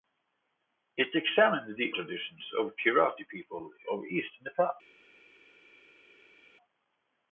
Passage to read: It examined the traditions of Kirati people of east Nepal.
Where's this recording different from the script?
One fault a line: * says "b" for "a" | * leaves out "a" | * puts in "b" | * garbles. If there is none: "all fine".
all fine